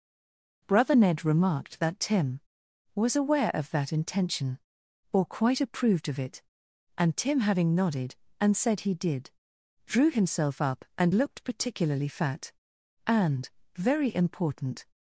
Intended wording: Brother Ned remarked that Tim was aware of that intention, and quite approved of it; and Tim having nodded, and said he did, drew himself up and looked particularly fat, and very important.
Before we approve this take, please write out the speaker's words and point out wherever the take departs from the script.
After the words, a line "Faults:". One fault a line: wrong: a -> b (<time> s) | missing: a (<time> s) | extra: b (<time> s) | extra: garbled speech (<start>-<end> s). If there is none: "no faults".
Brother Ned remarked that Tim was aware of that intention, or quite approved of it; and Tim having nodded, and said he did, drew himself up and looked particularly fat, and very important.
Faults:
wrong: and -> or (5.1 s)